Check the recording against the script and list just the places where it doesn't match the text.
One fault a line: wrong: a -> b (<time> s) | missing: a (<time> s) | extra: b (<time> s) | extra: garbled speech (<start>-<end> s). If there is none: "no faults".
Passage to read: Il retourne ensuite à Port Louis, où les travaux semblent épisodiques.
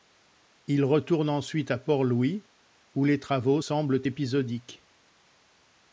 no faults